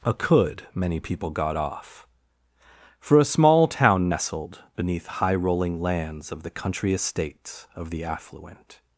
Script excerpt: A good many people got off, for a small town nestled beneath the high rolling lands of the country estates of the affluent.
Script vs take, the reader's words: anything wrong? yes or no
yes